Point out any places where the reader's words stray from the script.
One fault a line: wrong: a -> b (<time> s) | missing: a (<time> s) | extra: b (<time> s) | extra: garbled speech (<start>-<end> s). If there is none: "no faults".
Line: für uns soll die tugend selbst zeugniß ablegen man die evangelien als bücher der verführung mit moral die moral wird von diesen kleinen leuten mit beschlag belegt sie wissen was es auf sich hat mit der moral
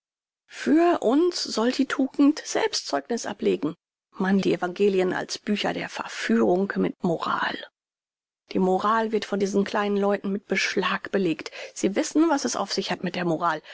no faults